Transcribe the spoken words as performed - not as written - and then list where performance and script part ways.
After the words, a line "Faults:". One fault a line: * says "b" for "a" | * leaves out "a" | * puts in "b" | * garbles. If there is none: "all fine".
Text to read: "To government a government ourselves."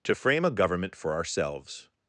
"To frame a government for ourselves."
Faults:
* says "frame" for "government"
* puts in "for"